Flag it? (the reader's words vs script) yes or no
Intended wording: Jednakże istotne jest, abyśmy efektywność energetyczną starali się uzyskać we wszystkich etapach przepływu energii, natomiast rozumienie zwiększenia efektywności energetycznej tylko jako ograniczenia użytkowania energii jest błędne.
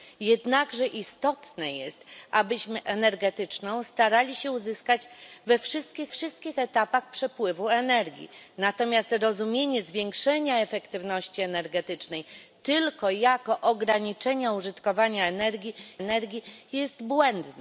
yes